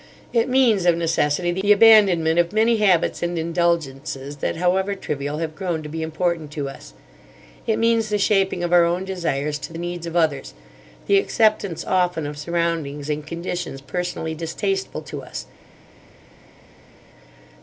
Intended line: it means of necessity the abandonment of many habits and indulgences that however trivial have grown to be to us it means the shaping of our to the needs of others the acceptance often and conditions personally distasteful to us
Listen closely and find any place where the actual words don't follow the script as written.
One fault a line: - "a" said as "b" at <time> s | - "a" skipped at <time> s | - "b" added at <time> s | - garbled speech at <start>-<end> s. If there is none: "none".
- "important" added at 6.0 s
- "own desires" added at 8.8 s
- "of surroundings" added at 12.3 s